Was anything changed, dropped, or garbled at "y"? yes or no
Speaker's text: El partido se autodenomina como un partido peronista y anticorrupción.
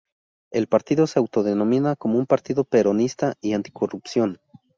no